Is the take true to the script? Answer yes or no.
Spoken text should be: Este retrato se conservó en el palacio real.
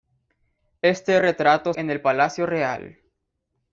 no